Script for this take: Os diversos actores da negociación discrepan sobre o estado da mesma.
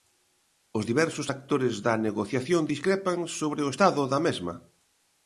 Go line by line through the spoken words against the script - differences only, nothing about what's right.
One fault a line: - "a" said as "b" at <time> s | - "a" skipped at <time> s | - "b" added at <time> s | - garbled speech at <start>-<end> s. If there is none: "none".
none